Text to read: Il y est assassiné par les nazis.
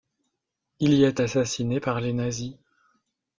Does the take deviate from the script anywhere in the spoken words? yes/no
no